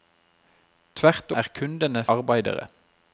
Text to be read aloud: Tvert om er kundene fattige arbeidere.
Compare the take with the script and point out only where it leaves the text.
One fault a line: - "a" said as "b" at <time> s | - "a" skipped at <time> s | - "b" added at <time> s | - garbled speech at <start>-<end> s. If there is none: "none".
- "om" skipped at 1.3 s
- "fattige" skipped at 2.0 s